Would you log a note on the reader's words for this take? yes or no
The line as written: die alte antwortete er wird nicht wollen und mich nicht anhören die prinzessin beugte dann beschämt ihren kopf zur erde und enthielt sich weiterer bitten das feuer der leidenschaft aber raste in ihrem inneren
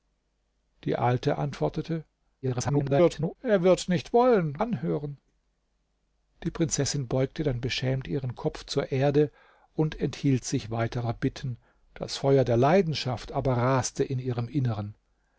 yes